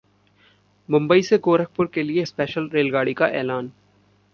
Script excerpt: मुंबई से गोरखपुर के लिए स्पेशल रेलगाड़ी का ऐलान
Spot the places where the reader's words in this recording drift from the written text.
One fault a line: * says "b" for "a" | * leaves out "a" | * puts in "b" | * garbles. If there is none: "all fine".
all fine